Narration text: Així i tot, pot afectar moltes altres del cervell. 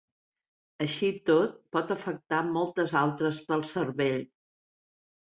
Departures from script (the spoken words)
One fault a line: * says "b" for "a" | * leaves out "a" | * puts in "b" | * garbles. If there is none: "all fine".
all fine